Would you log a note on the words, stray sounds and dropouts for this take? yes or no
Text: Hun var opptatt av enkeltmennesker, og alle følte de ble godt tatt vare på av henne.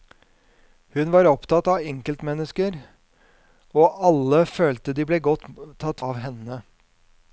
yes